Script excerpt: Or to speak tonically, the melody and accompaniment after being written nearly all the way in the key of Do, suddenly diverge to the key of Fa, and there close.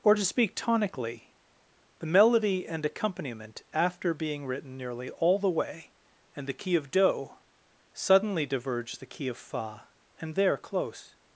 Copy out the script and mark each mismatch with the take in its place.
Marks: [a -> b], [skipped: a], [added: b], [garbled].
Or to speak tonically, the melody and accompaniment after being written nearly all the way [in -> and] the key of Do, suddenly diverge [skipped: to] the key of Fa, and there close.